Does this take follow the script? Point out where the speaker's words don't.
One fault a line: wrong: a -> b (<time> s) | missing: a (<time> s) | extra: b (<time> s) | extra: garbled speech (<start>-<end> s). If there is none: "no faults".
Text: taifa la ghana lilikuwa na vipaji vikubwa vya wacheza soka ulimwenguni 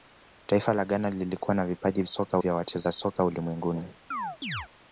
wrong: vikubwa -> soka (2.1 s)